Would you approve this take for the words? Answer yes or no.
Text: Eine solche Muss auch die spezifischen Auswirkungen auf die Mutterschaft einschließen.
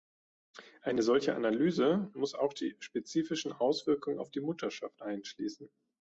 no